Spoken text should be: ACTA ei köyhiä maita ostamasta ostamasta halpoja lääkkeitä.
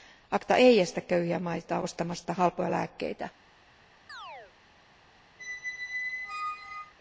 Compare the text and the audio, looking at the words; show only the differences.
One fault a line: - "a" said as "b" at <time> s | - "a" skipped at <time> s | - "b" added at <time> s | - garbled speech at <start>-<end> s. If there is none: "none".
- "estä" added at 0.8 s
- "ostamasta" skipped at 2.3 s